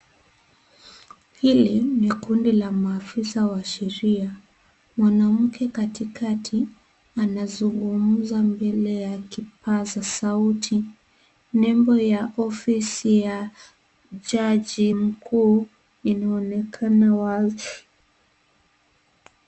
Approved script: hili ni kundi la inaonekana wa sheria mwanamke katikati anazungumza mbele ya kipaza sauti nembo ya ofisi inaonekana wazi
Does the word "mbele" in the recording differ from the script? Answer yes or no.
no